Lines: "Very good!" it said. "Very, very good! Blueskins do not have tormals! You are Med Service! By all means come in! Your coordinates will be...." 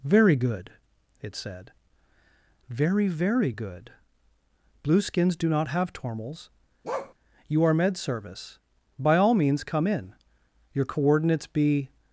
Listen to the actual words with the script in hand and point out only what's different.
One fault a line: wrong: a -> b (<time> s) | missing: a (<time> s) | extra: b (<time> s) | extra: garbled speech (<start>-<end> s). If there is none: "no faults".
missing: will (11.5 s)